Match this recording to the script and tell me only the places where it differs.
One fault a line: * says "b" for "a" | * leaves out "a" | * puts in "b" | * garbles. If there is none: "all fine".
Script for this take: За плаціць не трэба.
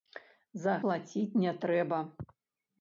all fine